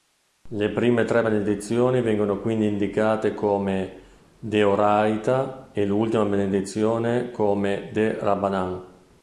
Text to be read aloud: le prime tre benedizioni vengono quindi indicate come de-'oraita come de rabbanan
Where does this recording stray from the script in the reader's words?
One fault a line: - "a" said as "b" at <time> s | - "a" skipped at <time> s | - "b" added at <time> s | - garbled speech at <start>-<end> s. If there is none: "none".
- "e l'ultima benedizione" added at 5.7 s